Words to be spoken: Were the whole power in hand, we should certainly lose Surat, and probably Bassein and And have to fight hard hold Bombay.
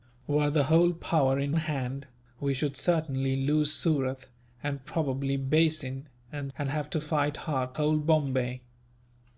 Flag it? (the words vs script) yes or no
no